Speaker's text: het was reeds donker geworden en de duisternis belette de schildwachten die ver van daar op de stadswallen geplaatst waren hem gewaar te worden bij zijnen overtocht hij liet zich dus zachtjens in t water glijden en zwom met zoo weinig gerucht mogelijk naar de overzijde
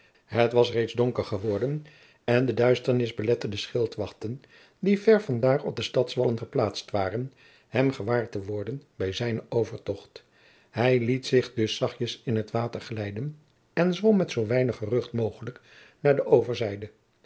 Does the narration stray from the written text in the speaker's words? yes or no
no